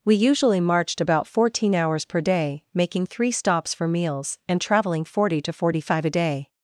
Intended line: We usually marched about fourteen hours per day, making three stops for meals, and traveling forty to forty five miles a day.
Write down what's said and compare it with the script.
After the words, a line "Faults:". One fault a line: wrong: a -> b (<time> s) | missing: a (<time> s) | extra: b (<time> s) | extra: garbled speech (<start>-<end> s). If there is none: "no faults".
We usually marched about fourteen hours per day, making three stops for meals, and traveling forty to forty five a day.
Faults:
missing: miles (6.1 s)